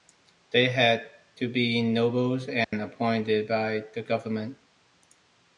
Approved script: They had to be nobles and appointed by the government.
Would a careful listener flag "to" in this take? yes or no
no